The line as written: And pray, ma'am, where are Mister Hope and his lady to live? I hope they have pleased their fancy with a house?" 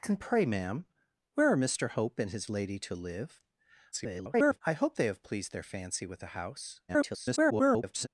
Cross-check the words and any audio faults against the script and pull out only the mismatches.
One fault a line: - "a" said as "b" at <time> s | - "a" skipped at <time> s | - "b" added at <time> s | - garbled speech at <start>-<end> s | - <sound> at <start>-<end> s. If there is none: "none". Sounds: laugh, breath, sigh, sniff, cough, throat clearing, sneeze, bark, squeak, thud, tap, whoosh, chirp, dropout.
- garbled speech at 3.9-4.6 s
- garbled speech at 6.9-8.1 s